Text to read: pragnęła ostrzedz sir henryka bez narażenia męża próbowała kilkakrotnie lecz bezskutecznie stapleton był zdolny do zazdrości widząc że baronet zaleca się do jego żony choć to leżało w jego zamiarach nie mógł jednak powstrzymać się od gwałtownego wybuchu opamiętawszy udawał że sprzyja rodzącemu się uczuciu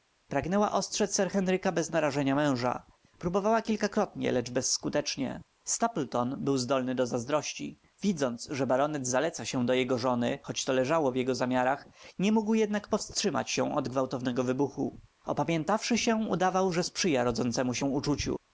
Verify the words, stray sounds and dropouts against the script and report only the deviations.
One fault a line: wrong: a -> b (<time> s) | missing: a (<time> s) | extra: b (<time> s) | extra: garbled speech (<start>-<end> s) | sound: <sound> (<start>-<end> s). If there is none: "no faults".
extra: się (16.0 s)